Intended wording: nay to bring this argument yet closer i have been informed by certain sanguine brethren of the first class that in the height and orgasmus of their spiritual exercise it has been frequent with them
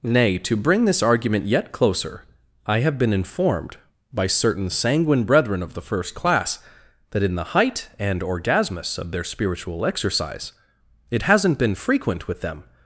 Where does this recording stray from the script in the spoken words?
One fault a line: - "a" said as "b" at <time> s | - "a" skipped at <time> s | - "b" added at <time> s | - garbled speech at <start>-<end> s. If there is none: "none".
- "has" said as "hasn't" at 11.2 s